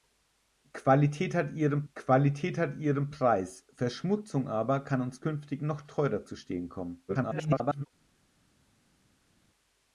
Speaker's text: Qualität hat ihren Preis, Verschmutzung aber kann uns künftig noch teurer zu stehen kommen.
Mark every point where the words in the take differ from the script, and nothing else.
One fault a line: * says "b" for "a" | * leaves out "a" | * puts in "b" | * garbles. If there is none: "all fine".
* puts in "qualität hat ihren"
* garbles